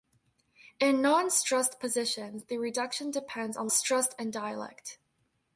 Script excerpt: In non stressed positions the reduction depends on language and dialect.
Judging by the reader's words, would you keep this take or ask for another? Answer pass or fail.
fail